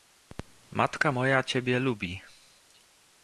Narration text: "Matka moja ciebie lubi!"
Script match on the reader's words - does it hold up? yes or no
yes